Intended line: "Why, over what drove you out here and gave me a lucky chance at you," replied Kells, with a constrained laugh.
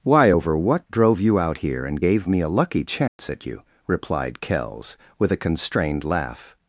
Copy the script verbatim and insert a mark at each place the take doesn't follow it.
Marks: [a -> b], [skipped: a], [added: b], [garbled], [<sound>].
"Why, over what drove you out here and gave me a lucky chance [dropout] at you," replied Kells, with a constrained laugh.